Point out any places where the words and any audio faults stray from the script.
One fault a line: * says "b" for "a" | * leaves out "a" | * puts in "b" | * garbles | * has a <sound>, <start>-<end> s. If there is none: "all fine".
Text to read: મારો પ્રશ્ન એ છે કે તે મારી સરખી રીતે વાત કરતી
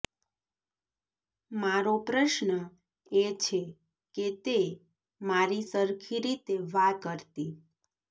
all fine